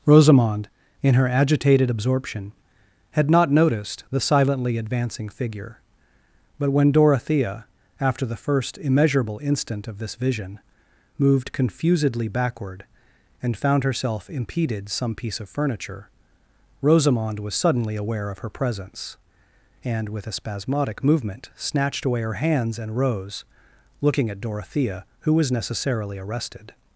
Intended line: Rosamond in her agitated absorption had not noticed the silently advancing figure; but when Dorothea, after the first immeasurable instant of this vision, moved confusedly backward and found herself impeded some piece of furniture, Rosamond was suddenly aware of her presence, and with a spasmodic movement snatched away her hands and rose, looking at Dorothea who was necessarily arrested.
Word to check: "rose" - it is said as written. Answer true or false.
true